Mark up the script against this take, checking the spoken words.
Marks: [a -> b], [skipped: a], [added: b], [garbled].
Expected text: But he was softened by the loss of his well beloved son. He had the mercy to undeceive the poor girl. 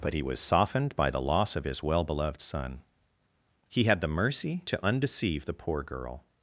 But he was softened by the loss of his well beloved son. He had the mercy to undeceive the poor girl.